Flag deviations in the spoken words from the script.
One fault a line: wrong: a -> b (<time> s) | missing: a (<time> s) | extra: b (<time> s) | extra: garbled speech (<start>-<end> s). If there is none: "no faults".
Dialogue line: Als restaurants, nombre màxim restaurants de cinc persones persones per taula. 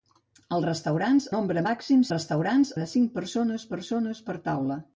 no faults